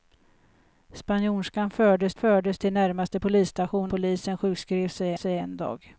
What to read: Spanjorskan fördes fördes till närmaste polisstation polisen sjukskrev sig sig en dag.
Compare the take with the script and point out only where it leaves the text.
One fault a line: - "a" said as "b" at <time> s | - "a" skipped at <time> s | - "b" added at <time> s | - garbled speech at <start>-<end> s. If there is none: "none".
none